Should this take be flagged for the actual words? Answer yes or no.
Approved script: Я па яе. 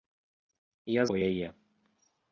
no